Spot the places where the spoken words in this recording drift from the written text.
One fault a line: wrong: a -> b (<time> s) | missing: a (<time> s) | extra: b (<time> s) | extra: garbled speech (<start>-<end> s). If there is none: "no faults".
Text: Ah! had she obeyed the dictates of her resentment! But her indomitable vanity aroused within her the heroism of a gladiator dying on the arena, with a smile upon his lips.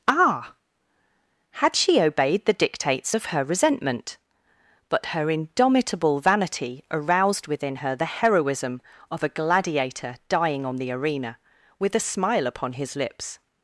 no faults